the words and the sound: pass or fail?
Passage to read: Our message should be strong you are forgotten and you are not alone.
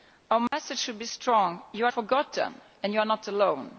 fail